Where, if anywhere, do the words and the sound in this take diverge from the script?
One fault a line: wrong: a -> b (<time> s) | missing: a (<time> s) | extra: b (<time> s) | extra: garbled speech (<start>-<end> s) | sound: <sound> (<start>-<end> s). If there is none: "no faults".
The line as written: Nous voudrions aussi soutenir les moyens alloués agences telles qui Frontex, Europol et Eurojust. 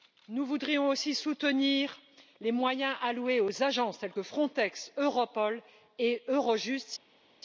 extra: aux (3.4 s)
wrong: qui -> que (4.1 s)